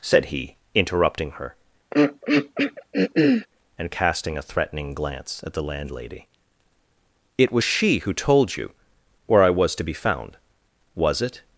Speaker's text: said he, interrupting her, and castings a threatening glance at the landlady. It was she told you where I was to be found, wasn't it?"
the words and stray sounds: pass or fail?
fail